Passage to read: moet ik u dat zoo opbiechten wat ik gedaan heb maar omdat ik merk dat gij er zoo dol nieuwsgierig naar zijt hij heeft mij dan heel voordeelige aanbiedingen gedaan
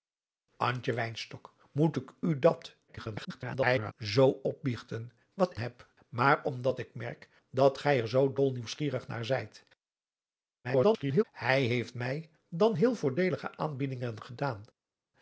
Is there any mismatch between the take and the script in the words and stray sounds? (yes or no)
yes